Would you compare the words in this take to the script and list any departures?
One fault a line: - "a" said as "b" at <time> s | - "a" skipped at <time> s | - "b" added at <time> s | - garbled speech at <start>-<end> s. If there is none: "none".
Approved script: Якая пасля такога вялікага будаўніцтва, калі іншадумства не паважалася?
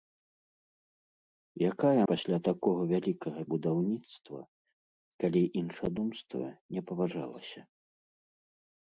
none